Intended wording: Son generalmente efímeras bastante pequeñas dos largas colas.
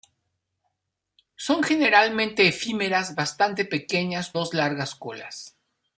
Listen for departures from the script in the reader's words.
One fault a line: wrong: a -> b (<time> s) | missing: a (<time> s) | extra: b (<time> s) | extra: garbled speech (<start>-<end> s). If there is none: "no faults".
no faults